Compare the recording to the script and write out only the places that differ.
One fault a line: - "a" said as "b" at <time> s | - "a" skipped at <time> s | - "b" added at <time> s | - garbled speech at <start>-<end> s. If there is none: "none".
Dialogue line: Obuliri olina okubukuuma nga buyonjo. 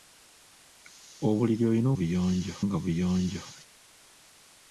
- "okubukuuma" said as "buyonjo" at 2.0 s